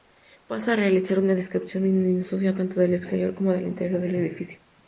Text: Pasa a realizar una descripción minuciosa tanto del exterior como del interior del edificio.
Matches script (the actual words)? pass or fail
pass